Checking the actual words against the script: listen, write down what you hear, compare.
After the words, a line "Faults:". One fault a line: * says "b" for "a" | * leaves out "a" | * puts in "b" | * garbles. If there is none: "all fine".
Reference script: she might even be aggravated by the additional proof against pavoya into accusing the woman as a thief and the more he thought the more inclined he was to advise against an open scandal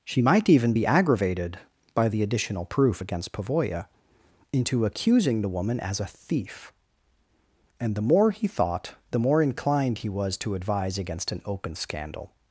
she might even be aggravated by the additional proof against pavoya into accusing the woman as a thief and the more he thought the more inclined he was to advise against an open scandal
Faults:
all fine